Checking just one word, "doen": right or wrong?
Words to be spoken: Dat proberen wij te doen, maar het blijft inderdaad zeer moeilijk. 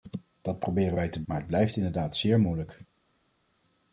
wrong